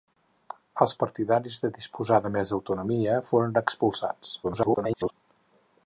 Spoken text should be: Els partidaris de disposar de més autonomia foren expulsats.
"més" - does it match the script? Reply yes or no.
yes